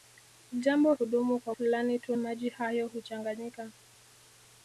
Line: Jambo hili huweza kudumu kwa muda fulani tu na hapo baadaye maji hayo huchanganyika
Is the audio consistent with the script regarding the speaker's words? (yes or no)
no